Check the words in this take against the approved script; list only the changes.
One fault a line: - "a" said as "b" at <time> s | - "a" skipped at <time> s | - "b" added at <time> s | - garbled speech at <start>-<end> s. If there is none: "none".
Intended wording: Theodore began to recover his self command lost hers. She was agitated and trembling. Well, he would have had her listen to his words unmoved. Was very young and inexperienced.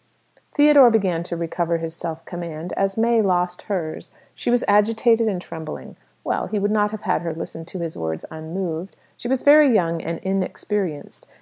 - "as May" added at 2.8 s
- "not" added at 6.7 s
- "She" added at 9.2 s